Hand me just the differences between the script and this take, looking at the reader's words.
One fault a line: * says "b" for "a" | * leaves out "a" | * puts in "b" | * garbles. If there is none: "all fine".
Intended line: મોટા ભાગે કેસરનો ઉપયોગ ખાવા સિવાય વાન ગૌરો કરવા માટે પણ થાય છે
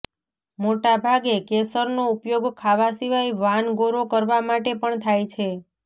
all fine